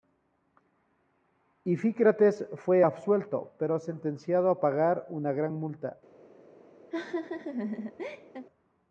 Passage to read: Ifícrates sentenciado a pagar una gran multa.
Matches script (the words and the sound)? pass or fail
fail